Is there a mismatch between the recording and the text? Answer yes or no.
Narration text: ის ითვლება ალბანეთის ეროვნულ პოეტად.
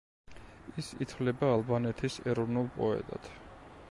no